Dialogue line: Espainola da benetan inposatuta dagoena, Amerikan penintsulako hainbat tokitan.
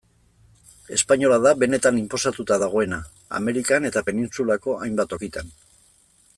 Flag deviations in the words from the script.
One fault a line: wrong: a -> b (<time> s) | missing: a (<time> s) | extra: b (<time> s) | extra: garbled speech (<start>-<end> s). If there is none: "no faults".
extra: eta (3.9 s)